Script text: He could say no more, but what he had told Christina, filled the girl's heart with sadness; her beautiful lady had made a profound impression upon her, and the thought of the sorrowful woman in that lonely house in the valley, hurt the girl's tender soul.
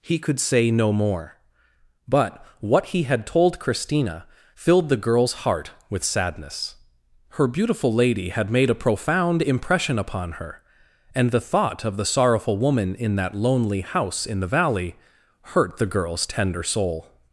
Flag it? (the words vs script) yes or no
no